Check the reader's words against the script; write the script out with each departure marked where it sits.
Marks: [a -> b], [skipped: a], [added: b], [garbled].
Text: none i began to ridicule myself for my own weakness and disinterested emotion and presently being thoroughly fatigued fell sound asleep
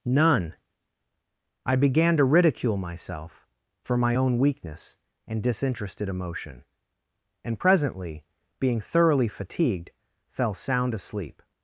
none i began to ridicule myself for my own weakness and disinterested emotion and presently being thoroughly fatigued fell sound asleep